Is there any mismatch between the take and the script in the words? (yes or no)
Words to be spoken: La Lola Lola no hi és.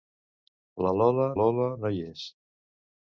no